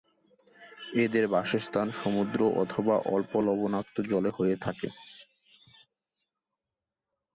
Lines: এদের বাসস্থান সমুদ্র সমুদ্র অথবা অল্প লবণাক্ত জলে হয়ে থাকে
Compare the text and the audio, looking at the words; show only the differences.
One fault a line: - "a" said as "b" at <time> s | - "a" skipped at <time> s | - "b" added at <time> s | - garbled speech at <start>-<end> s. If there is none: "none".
- "সমুদ্র" skipped at 2.4 s